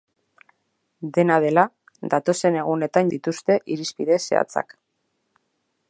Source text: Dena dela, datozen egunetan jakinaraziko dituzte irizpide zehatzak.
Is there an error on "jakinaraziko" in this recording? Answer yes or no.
yes